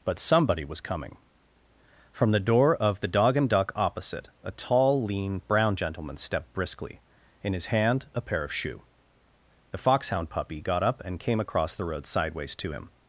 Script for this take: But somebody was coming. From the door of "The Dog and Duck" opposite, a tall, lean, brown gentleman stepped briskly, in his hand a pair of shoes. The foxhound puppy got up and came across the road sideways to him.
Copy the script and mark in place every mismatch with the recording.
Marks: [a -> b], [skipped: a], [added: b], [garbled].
But somebody was coming. From the door of "The Dog and Duck" opposite, a tall, lean, brown gentleman stepped briskly, in his hand a pair of [shoes. -> shoe] The foxhound puppy got up and came across the road sideways to him.